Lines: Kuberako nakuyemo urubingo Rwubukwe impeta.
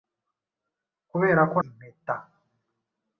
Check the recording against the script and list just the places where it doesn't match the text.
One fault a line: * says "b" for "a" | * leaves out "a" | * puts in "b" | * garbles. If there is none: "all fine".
* leaves out "nakuyemo urubingo Rwubukwe"